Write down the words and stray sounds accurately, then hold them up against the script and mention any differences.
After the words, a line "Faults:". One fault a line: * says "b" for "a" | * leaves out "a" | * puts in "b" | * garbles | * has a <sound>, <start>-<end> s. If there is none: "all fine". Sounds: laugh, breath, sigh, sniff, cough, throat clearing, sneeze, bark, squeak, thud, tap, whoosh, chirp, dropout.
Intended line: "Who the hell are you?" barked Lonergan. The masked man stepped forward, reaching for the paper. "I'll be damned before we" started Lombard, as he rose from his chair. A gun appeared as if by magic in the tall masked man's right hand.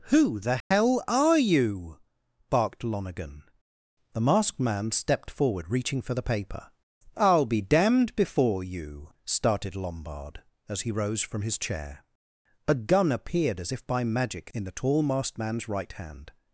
"Who the hell are you?" barked Lonergan. The masked man stepped forward, reaching for the paper. "I'll be damned before you" started Lombard, as he rose from his chair. A gun appeared as if by magic in the tall masked man's right hand.
Faults:
* has a dropout, 0.6-0.7 s
* says "you" for "we"